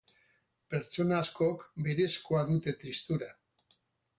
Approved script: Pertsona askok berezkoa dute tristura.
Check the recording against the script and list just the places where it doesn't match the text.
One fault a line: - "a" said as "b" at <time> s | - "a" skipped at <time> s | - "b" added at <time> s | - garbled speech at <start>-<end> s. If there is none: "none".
none